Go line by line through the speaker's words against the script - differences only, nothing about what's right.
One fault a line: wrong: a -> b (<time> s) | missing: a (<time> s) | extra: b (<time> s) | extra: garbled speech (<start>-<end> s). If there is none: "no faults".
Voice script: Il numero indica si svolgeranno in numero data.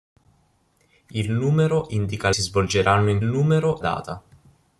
no faults